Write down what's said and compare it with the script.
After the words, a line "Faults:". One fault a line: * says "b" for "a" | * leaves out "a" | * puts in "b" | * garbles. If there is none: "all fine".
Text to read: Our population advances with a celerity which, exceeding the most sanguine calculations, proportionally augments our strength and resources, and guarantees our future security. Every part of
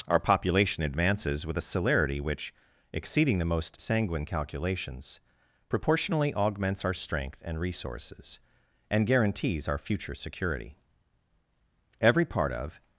Our population advances with a celerity which, exceeding the most sanguine calculations, proportionally augments our strength and resources, and guarantees our future security. Every part of
Faults:
all fine